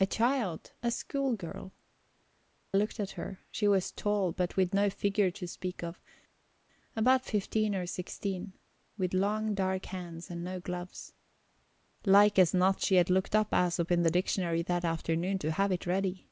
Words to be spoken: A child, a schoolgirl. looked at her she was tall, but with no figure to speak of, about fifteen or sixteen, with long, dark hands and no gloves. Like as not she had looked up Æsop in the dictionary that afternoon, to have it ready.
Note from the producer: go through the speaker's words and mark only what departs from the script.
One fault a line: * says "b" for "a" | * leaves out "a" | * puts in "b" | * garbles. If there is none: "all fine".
all fine